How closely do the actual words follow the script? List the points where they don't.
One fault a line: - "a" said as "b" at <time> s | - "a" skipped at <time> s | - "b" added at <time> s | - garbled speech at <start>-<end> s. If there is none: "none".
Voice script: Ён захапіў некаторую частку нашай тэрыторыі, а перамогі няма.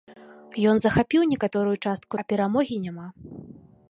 - "нашай тэрыторыі" skipped at 2.1 s